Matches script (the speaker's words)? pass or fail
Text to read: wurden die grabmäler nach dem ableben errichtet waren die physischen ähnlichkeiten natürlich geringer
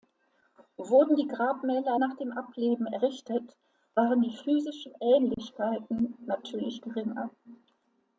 pass